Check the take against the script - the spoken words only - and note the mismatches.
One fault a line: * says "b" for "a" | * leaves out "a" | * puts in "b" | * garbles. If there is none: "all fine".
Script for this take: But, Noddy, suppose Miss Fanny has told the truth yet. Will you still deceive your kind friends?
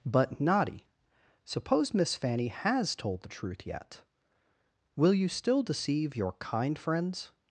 all fine